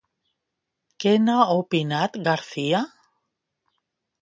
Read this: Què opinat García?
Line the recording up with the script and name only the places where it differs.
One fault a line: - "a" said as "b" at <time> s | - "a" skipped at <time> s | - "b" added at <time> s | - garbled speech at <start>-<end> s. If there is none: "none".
- "n'ha" added at 1.2 s